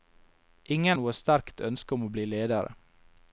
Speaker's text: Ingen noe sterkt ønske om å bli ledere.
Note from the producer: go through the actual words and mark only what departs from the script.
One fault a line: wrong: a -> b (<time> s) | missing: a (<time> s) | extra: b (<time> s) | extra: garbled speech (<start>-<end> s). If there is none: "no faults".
no faults